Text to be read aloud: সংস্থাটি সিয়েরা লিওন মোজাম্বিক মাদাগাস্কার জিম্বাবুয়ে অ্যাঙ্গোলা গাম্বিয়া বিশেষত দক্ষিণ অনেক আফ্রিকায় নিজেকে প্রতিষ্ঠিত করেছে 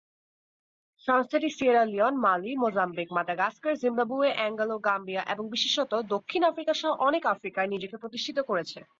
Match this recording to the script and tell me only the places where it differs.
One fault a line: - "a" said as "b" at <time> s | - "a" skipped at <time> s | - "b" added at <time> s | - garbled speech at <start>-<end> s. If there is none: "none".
- "মালি" added at 2.2 s
- "এবং" added at 5.2 s
- "আফ্রিকা সহ" added at 6.4 s